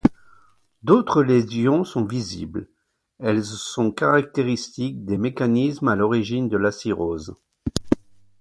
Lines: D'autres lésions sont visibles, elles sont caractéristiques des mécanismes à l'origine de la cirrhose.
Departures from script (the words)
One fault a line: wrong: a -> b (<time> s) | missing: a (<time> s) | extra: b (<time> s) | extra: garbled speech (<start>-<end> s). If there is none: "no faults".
no faults